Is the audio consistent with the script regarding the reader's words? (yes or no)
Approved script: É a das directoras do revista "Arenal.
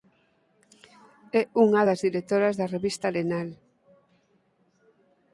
no